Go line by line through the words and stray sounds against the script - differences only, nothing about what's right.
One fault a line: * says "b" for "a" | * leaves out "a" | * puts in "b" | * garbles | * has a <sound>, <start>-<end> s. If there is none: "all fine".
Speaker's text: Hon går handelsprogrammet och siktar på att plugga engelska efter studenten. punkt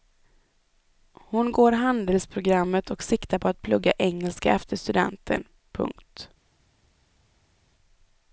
all fine